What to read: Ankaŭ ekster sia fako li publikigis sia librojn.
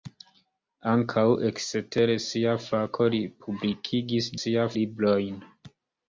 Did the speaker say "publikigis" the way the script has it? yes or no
yes